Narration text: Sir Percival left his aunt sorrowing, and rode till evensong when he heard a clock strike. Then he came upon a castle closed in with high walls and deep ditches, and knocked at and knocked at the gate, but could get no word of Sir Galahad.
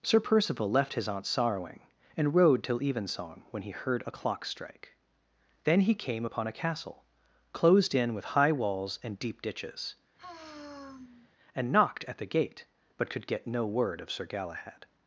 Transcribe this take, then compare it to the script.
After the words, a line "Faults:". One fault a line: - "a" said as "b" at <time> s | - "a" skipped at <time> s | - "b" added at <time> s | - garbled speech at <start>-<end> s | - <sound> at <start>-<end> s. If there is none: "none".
Sir Percival left his aunt sorrowing, and rode till evensong when he heard a clock strike. Then he came upon a castle closed in with high walls and deep ditches, and knocked at the gate, but could get no word of Sir Galahad.
Faults:
- sigh at 10.2-11.3 s
- "and knocked at" skipped at 12.2 s